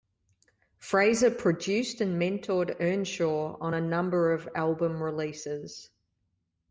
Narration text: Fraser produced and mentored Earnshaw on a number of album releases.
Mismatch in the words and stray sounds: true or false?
false